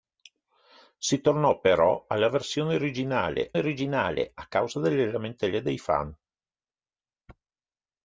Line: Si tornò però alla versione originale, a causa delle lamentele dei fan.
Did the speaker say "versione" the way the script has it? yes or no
yes